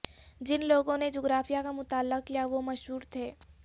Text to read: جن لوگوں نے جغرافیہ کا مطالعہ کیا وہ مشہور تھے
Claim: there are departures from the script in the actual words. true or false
false